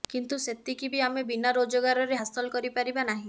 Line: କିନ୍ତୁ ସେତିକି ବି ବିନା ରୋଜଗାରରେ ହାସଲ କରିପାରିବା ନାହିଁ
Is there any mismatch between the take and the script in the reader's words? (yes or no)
yes